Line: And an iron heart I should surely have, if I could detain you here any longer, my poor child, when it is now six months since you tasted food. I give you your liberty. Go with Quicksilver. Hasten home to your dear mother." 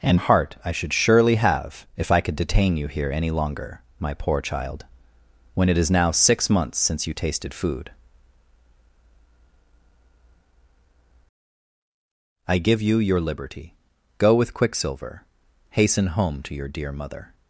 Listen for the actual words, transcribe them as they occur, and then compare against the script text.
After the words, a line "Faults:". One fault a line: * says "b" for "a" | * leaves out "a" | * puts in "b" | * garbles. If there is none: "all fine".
And heart I should surely have, if I could detain you here any longer, my poor child, when it is now six months since you tasted food. I give you your liberty. Go with Quicksilver. Hasten home to your dear mother."
Faults:
* leaves out "an iron"